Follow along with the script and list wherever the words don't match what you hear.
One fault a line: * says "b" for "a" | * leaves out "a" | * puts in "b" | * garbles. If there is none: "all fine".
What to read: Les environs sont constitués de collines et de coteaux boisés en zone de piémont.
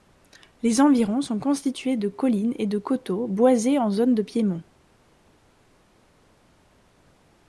all fine